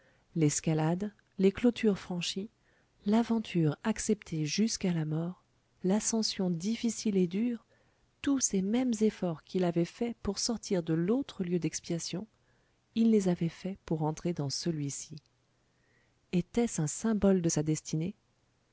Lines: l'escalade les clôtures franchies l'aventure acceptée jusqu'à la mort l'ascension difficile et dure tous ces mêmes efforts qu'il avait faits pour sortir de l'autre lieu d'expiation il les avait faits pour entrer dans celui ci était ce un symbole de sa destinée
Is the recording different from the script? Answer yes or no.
no